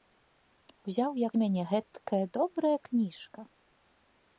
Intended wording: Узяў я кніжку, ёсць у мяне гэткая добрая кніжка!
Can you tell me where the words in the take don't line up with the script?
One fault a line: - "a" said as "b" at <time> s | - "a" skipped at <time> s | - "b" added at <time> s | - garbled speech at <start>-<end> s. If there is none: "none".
- "кніжку ёсць" skipped at 1.3 s